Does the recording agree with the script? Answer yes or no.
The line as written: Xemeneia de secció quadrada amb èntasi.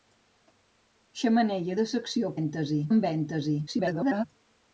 no